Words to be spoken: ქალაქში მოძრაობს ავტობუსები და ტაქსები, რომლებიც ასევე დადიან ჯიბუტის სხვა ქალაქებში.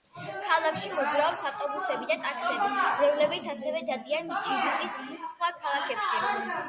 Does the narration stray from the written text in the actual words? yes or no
no